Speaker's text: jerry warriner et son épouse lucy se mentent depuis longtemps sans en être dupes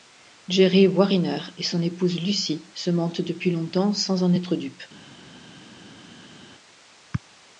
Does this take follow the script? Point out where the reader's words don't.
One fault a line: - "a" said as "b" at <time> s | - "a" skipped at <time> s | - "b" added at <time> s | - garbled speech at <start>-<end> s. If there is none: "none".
none